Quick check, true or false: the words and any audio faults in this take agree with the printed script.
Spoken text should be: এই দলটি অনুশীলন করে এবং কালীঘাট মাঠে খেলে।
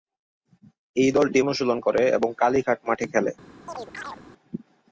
false